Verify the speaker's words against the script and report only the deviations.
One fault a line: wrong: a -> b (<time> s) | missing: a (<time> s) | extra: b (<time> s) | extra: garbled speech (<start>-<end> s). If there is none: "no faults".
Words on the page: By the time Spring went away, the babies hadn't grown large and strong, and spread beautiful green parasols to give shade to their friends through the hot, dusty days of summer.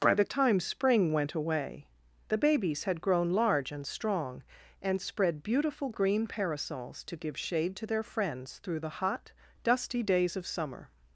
wrong: hadn't -> had (2.9 s)